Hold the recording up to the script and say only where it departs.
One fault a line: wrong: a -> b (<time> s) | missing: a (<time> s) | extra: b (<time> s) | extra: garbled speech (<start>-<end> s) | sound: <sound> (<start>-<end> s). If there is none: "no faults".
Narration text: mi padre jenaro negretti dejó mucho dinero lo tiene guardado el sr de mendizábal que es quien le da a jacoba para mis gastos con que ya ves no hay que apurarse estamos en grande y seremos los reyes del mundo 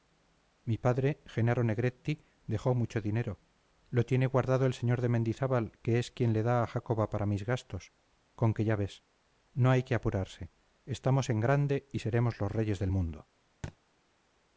sound: thud (13.6-13.8 s)